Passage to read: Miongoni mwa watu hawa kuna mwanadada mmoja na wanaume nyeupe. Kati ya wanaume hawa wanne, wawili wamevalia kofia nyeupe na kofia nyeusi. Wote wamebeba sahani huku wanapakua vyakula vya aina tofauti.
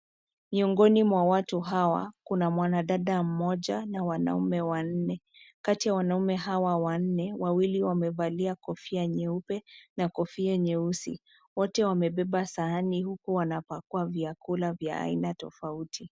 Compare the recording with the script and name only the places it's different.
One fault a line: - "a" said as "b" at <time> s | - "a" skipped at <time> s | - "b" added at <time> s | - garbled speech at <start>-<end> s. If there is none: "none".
- "nyeupe" said as "wanne" at 4.6 s